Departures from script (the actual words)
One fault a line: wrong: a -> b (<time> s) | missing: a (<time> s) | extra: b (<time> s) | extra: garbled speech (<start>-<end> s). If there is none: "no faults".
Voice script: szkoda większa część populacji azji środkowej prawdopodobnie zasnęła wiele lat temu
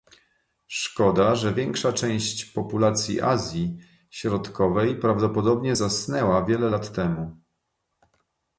extra: że (1.4 s)